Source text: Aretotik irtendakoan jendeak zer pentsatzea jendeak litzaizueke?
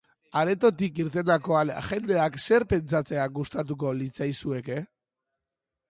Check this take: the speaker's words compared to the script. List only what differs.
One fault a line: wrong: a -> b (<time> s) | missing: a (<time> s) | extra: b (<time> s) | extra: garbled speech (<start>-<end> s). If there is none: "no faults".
wrong: jendeak -> gustatuko (3.4 s)